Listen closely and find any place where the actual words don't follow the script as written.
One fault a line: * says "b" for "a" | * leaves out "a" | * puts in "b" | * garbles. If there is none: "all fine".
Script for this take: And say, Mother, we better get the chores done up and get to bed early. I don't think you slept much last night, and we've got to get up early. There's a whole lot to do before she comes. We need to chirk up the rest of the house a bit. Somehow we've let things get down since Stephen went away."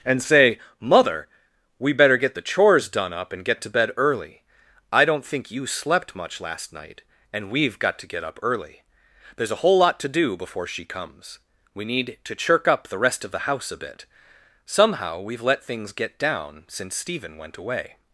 all fine